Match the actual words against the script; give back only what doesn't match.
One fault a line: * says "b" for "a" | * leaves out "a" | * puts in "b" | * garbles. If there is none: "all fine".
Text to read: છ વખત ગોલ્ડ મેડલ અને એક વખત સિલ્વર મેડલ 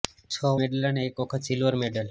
* leaves out "વખત ગોલ્ડ"